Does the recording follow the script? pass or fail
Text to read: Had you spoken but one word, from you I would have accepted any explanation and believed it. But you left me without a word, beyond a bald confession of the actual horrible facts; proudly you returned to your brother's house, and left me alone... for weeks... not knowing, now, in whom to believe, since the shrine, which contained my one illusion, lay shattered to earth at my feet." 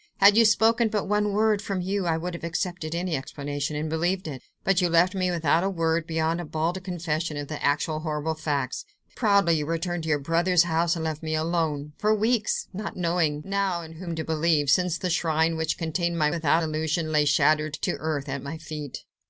fail